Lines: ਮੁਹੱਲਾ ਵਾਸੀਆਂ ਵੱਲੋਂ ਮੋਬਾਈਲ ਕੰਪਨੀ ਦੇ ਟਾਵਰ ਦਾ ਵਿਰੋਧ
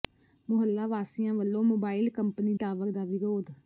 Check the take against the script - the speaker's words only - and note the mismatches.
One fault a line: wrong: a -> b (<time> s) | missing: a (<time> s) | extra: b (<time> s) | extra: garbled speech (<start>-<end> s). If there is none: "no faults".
missing: ਦੇ (2.5 s)